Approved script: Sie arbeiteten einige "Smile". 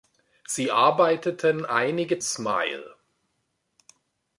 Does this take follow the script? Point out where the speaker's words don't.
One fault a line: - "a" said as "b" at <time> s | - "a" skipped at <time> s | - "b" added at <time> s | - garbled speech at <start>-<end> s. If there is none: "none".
none